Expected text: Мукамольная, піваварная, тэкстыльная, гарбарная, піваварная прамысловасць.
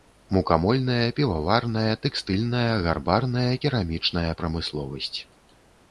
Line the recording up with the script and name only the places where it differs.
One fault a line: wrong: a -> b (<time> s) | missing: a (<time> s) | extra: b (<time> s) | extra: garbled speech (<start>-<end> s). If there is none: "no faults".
wrong: піваварная -> керамічная (3.6 s)